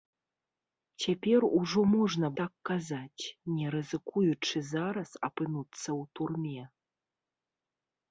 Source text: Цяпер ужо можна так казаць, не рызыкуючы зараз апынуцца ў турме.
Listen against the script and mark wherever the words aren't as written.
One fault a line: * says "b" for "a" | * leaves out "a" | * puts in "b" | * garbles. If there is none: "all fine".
all fine